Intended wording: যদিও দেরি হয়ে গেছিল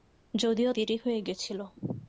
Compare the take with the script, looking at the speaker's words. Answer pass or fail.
pass